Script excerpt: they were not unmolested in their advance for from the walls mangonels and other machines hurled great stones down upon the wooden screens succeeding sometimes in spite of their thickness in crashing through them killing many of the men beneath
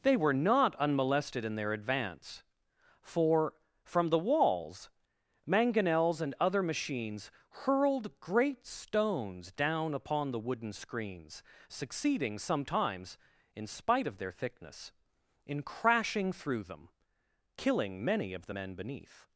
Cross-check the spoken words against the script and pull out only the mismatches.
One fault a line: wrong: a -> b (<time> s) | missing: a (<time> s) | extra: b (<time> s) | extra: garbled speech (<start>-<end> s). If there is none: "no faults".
no faults